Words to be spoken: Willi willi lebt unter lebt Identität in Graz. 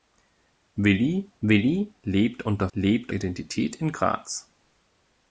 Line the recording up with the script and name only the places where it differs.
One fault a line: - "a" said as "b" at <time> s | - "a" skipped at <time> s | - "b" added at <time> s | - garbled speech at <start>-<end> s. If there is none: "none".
none